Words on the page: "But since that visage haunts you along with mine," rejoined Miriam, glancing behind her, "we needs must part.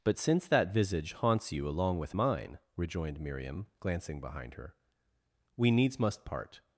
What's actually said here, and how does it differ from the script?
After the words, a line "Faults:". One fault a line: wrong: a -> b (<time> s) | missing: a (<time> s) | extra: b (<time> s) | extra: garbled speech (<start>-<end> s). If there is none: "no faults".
"But since that visage haunts you along with mine," rejoined Miriam, glancing behind her, "we needs must part.
Faults:
no faults